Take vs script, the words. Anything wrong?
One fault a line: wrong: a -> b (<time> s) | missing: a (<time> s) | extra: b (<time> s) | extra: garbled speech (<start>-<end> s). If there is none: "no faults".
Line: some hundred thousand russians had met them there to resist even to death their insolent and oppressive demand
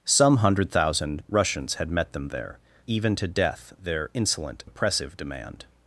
missing: to resist (2.6 s)
missing: and (4.6 s)